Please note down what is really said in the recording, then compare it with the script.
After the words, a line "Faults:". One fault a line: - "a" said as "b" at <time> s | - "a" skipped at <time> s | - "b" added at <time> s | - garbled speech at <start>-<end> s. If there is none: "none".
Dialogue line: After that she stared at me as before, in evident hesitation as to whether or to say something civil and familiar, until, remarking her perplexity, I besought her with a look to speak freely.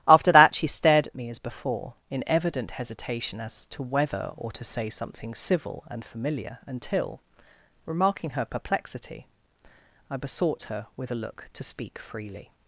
After that she stared at me as before, in evident hesitation as to whether or to say something civil and familiar, until, remarking her perplexity, I besought her with a look to speak freely.
Faults:
none